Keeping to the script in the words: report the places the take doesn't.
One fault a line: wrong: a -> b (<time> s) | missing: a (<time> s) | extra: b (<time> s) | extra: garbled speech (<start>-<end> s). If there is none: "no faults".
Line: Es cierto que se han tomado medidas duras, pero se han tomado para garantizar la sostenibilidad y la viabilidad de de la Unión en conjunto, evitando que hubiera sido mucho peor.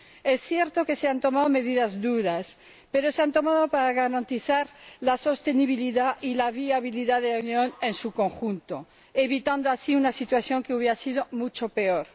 missing: de (7.3 s)
extra: su (7.9 s)
extra: así una situación (9.7 s)